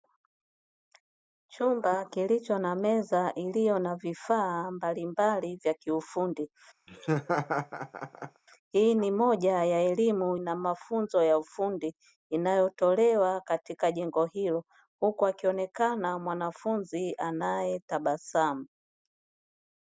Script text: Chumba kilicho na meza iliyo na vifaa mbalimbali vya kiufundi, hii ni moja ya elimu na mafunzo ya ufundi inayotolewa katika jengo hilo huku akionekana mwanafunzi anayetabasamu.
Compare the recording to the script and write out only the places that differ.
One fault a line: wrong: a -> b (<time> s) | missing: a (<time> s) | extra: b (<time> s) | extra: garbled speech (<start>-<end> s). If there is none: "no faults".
no faults